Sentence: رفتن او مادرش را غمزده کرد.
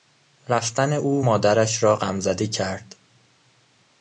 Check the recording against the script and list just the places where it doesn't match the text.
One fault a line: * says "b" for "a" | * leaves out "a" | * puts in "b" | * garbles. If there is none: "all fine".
all fine